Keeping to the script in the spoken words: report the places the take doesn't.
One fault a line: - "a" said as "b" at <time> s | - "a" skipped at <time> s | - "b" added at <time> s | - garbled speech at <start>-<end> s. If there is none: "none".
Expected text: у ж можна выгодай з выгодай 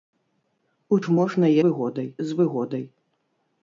none